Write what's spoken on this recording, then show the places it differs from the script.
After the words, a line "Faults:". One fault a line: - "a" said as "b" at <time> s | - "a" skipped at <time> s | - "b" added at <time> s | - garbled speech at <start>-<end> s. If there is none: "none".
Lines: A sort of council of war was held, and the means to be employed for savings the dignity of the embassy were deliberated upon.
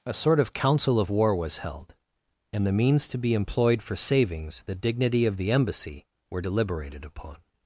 A sort of council of war was held, and the means to be employed for savings the dignity of the embassy were deliberated upon.
Faults:
none